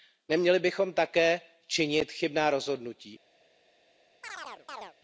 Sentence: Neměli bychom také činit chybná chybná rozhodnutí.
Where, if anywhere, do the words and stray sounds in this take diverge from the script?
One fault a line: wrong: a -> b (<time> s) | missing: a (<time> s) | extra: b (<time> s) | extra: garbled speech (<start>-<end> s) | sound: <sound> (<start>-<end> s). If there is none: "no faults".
missing: chybná (2.5 s)
sound: chirp (4.2-4.9 s)